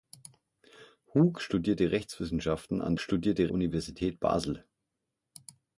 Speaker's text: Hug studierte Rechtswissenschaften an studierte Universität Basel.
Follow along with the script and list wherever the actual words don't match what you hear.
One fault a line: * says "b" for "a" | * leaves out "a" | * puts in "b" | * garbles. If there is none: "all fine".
all fine